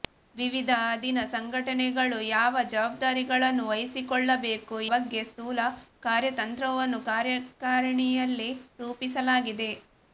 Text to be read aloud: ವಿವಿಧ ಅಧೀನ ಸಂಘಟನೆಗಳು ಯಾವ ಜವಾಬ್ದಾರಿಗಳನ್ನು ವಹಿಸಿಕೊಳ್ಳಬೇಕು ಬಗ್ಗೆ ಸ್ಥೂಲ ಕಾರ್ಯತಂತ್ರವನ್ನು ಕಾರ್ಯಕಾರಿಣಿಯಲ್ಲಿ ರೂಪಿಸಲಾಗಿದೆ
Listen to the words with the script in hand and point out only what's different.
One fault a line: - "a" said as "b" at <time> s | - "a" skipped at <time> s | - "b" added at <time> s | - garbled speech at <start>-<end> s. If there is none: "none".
none